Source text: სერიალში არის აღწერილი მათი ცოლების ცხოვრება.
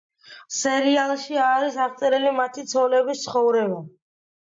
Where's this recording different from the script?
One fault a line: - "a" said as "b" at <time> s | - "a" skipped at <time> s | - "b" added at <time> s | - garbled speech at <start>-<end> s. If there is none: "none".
none